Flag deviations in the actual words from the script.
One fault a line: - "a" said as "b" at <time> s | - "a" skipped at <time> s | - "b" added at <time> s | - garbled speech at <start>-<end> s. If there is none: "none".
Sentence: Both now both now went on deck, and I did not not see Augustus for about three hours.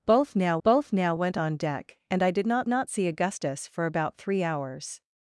none